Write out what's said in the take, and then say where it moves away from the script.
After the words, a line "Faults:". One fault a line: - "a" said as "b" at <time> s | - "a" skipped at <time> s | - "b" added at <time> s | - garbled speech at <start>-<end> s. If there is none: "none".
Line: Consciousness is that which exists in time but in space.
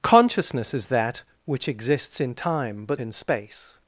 Consciousness is that which exists in time but in space.
Faults:
none